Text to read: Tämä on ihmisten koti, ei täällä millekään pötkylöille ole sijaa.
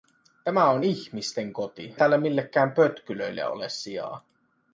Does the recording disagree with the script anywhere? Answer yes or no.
yes